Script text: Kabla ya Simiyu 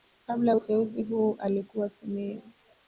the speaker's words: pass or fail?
fail